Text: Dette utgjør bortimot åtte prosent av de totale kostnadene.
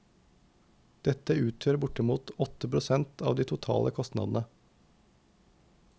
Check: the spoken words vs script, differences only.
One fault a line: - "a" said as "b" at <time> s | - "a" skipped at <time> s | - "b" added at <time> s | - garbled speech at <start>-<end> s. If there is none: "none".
none